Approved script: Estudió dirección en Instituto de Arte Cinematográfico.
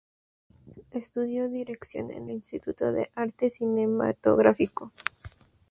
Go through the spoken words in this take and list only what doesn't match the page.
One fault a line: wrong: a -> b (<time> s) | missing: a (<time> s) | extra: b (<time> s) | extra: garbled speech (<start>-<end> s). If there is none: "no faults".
no faults